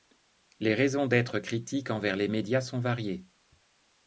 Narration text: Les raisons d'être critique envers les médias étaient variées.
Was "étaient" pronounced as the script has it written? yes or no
no